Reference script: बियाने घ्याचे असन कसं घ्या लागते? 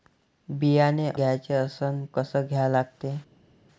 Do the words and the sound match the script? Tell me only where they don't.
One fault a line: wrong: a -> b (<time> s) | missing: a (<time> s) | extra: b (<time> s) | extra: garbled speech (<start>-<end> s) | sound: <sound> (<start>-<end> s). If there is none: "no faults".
no faults